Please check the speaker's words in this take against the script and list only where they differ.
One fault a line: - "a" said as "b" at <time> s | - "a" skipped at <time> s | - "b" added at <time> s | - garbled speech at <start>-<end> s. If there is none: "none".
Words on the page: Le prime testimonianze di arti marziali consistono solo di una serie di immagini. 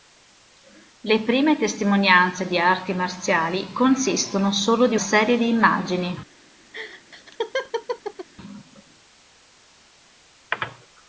- "una" skipped at 5.0 s